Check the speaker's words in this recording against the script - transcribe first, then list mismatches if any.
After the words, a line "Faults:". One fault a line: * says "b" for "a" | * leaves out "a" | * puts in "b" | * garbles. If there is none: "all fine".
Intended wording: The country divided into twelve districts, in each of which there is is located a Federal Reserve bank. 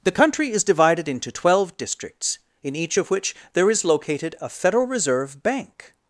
The country is divided into twelve districts, in each of which there is located a Federal Reserve bank.
Faults:
* puts in "is"
* leaves out "is"